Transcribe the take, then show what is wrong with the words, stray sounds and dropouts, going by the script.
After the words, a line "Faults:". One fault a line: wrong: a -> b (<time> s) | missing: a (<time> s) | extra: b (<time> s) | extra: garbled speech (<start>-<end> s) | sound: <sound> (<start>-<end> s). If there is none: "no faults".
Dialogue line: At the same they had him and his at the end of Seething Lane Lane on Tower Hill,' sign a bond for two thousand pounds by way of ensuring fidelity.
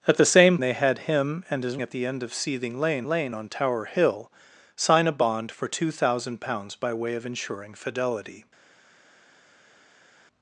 At the same they had him and his at the end of Seething Lane Lane on Tower Hill,' sign a bond for two thousand pounds by way of ensuring fidelity.
Faults:
no faults